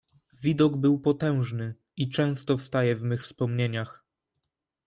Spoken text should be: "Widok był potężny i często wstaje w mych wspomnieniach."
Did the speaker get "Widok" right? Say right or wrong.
right